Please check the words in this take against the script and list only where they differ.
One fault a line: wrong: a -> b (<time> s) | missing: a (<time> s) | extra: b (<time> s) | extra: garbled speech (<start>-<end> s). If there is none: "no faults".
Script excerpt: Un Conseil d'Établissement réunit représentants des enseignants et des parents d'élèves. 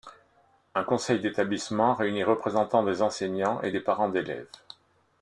no faults